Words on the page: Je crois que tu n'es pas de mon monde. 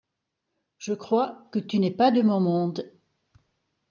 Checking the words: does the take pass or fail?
pass